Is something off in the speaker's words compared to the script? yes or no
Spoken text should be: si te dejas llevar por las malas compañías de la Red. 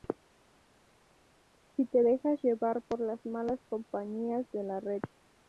no